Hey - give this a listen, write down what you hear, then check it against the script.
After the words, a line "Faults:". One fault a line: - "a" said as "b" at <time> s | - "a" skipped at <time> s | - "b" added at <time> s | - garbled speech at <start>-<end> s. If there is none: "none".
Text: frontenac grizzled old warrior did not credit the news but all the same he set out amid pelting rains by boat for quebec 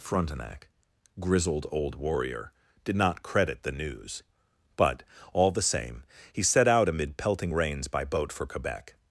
frontenac grizzled old warrior did not credit the news but all the same he set out amid pelting rains by boat for quebec
Faults:
none